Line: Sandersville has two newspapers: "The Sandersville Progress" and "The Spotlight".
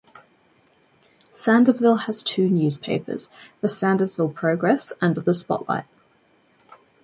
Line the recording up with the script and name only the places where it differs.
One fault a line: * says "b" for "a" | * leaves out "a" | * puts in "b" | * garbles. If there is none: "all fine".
all fine